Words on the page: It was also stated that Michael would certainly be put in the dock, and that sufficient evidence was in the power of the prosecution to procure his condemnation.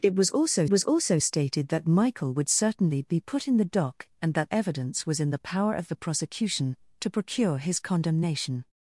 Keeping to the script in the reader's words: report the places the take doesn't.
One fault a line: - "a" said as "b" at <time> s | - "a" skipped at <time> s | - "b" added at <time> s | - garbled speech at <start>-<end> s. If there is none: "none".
- "was also" added at 0.7 s
- "sufficient" skipped at 4.5 s